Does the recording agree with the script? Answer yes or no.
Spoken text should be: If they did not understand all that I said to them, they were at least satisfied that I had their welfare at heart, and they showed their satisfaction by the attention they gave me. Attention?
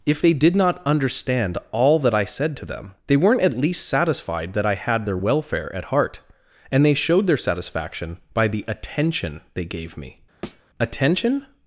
no